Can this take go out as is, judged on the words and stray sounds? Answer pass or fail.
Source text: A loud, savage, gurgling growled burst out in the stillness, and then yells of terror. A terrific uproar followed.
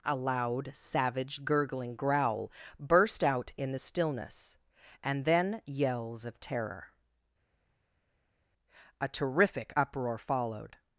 fail